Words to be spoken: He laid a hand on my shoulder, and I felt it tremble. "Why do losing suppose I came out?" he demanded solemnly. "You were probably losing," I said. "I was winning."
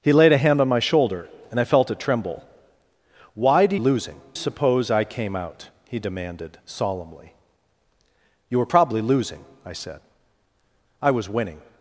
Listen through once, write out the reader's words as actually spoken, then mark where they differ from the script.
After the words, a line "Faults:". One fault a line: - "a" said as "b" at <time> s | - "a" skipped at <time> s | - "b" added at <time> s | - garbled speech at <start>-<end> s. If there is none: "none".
He laid a hand on my shoulder, and I felt it tremble. "Why do losing suppose I came out?" he demanded solemnly. "You were probably losing," I said. "I was winning."
Faults:
none